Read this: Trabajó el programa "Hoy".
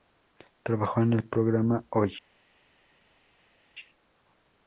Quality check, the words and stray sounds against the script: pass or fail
fail